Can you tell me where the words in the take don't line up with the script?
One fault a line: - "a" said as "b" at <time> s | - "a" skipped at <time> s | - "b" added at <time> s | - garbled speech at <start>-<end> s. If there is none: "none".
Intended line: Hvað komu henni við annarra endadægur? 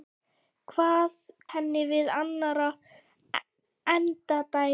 - "komu" skipped at 1.2 s